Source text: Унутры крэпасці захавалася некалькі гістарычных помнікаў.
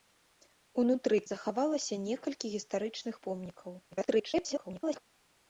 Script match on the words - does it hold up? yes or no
no